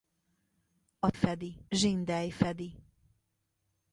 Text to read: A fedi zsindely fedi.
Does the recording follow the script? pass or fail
pass